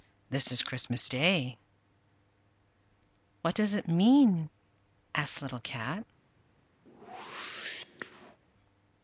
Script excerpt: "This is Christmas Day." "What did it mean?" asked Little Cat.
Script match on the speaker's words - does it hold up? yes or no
no